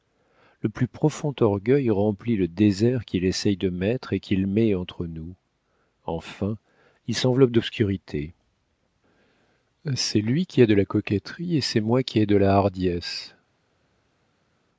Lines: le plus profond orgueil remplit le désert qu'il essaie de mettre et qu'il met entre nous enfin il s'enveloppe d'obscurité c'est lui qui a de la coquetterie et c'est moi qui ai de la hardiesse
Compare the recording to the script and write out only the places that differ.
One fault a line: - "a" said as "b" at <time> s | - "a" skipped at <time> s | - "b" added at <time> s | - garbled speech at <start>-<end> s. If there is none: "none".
none